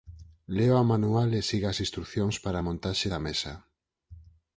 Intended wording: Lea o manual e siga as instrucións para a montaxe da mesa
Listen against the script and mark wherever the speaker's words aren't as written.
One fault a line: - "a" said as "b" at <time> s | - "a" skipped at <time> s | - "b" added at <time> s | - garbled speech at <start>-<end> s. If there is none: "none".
none